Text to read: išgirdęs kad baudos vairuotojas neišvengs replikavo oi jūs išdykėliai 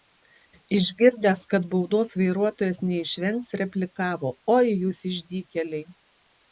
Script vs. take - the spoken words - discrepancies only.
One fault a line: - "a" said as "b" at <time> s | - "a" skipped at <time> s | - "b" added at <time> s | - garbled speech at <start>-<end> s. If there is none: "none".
none